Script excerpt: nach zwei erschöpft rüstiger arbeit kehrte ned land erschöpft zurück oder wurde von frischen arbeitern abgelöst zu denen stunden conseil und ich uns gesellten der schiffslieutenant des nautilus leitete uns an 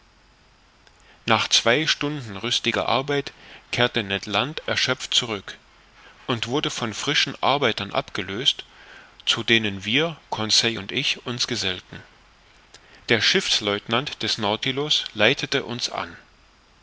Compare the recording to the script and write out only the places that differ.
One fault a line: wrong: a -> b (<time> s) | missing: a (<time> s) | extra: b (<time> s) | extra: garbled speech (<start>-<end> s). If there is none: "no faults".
wrong: erschöpft -> stunden (1.9 s)
wrong: oder -> und (6.3 s)
wrong: stunden -> wir (9.8 s)